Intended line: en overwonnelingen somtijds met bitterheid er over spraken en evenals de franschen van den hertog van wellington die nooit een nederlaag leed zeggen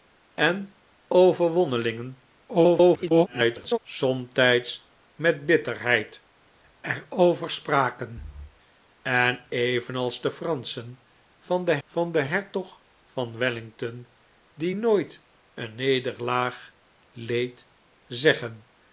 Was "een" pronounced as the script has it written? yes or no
yes